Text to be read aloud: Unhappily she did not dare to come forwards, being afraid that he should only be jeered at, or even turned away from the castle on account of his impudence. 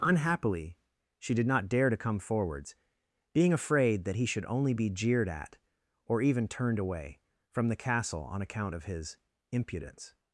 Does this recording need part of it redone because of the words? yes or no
no